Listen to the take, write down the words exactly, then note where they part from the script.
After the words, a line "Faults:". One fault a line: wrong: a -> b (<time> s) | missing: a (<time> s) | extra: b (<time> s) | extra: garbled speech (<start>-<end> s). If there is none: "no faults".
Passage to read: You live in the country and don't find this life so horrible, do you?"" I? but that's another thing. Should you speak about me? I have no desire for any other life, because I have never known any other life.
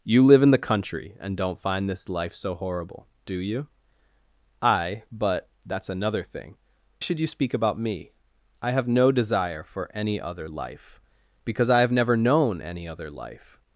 You live in the country and don't find this life so horrible, do you?"" I? but that's another thing. Should you speak about me? I have no desire for any other life, because I have never known any other life.
Faults:
no faults